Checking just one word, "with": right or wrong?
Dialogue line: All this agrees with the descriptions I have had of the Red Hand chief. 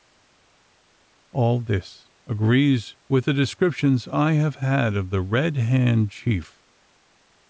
right